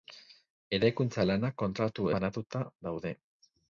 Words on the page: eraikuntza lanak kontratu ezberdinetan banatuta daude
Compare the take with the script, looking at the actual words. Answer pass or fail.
fail